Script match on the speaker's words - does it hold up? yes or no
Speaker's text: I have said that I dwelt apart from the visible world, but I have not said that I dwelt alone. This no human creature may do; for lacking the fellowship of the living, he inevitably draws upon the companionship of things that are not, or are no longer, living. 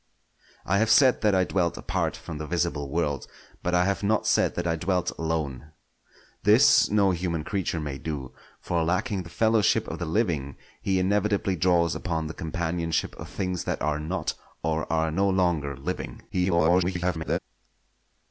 no